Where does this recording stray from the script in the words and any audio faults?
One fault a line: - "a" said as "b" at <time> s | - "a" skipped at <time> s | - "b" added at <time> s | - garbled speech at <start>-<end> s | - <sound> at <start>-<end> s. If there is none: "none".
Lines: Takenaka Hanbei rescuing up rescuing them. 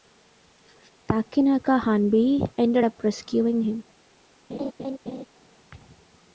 - "rescuing" said as "ended" at 2.6 s
- "them" said as "him" at 3.6 s
- laugh at 4.5-5.3 s